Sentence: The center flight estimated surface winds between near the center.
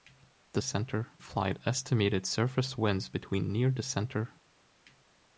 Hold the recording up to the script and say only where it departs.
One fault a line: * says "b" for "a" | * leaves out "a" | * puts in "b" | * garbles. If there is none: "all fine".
all fine